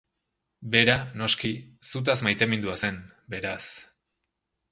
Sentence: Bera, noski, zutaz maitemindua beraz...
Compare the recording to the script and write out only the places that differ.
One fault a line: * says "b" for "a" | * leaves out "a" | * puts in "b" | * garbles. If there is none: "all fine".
* puts in "zen"